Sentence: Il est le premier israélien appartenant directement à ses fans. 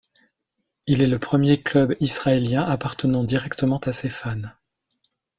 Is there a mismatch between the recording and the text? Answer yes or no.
yes